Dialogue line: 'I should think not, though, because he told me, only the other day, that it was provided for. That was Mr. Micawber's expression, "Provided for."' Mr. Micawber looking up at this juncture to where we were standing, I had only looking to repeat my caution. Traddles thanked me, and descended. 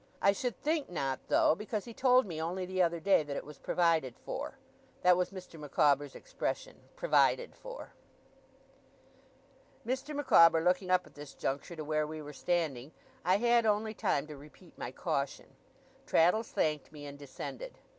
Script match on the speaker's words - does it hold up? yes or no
no